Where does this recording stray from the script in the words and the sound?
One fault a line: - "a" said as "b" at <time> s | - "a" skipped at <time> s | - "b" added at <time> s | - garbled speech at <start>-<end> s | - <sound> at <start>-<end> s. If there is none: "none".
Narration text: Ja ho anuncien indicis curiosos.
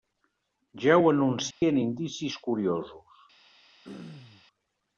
- dropout at 1.5-1.6 s
- throat clearing at 3.8-4.4 s